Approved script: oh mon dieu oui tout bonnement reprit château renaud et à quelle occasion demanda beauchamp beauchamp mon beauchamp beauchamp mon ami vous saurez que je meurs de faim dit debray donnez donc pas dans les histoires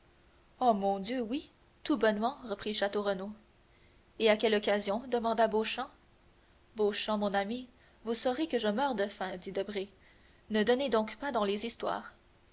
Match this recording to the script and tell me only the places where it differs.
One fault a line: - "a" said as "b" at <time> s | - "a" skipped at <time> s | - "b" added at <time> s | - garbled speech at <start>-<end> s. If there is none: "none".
- "beauchamp beauchamp mon" skipped at 7.3 s
- "ne" added at 10.5 s